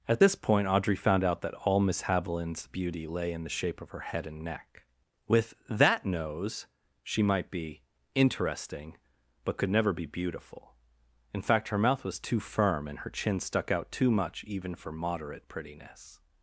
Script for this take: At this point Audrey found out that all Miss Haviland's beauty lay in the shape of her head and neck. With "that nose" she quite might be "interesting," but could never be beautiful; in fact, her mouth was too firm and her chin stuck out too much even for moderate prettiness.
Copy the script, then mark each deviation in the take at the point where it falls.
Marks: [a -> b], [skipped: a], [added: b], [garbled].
At this point Audrey found out that all Miss Haviland's beauty lay in the shape of her head and neck. With "that nose" she [skipped: quite] might be "interesting," but could never be beautiful; in fact, her mouth was too firm and her chin stuck out too much even for moderate prettiness.